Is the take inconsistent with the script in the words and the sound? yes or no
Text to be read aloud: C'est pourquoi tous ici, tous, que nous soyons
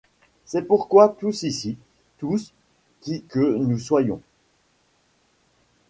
yes